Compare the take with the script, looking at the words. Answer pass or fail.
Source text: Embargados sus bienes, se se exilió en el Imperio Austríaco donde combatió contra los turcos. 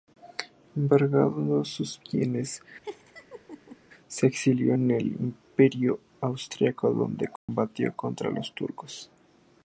fail